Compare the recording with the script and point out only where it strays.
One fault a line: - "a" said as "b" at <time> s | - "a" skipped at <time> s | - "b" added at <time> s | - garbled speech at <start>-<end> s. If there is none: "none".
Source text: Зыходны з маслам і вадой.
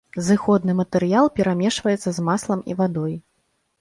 - "матэрыял перамешваецца" added at 0.8 s